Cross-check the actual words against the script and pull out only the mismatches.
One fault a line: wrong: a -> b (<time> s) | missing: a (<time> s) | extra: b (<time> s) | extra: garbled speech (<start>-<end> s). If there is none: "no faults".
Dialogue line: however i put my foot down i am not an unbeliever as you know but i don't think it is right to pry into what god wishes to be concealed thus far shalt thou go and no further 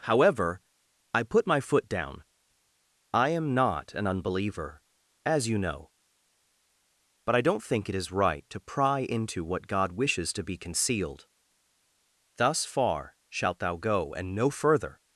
no faults